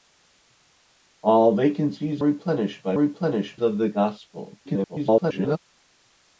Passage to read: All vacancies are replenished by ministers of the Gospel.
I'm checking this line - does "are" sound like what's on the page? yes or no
no